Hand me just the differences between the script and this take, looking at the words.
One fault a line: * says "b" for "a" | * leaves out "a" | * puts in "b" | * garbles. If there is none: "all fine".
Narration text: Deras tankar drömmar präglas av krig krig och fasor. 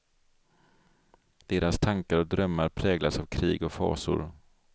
* puts in "och"
* leaves out "krig"